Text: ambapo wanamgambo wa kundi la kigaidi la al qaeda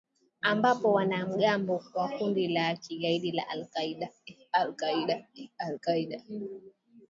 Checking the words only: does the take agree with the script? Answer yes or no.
yes